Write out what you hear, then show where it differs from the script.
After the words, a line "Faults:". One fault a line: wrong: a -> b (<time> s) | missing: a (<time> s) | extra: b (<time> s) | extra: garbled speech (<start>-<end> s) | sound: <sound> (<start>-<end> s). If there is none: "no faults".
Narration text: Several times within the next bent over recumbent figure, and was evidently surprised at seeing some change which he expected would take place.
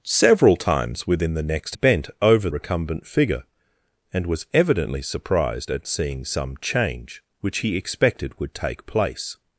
Several times within the next bent over recumbent figure, and was evidently surprised at seeing some change which he expected would take place.
Faults:
no faults